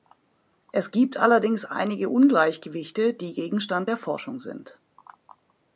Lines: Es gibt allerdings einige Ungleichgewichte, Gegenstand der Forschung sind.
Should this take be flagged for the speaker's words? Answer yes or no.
yes